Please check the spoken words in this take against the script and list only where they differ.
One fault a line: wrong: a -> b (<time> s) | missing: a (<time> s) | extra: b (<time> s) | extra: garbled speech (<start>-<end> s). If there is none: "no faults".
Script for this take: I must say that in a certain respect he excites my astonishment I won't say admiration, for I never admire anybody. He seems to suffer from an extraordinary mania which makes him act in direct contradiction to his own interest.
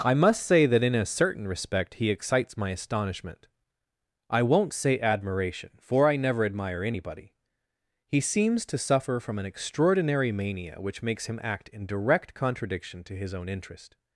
no faults